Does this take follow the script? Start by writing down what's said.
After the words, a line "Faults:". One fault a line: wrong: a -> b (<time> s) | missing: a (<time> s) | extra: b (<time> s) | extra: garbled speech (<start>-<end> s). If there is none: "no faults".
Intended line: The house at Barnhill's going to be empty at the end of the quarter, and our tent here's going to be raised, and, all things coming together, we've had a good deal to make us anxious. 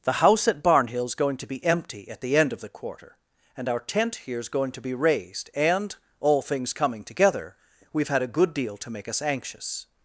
The house at Barnhill's going to be empty at the end of the quarter, and our tent here's going to be raised, and, all things coming together, we've had a good deal to make us anxious.
Faults:
no faults